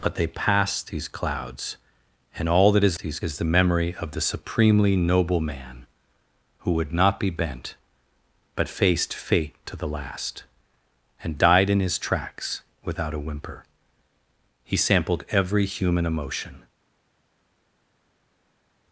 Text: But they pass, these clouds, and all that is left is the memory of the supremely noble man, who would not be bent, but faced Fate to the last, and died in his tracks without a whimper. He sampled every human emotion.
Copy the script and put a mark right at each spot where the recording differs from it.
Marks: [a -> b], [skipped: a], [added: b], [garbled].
But they pass, these clouds, and all that is [left -> these] is the memory of the supremely noble man, who would not be bent, but faced Fate to the last, and died in his tracks without a whimper. He sampled every human emotion.